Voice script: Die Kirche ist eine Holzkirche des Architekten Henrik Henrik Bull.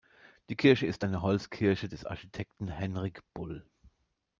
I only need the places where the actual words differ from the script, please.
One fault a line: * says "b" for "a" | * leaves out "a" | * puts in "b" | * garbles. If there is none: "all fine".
* leaves out "Henrik"